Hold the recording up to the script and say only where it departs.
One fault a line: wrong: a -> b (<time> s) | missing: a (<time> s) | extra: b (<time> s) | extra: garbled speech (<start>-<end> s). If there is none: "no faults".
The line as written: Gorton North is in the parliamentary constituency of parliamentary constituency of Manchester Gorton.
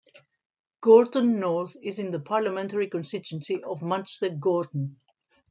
missing: parliamentary constituency of (3.8 s)